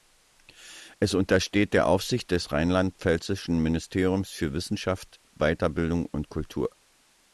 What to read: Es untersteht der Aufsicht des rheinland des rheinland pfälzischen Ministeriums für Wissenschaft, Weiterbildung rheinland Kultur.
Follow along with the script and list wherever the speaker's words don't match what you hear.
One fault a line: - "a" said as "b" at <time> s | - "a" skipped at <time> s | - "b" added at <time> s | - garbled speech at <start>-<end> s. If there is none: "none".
- "des rheinland" skipped at 3.0 s
- "rheinland" said as "und" at 6.1 s